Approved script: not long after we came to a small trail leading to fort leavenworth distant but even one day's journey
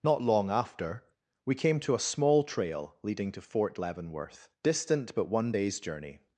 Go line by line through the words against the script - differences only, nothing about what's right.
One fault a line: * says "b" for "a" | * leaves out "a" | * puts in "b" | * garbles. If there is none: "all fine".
* leaves out "even"